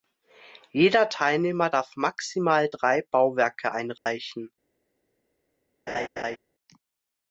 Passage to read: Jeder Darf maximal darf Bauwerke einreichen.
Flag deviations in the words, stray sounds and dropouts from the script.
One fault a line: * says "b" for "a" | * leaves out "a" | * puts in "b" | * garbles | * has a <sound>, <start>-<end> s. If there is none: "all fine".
* puts in "Teilnehmer"
* says "drei" for "darf"
* has a dropout, 4.0-4.1 s
* has a laugh, 5.9-6.4 s